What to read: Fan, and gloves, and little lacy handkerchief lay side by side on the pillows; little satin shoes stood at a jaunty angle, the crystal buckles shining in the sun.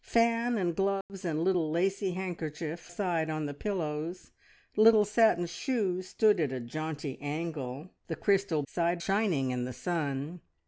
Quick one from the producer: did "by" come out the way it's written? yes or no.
no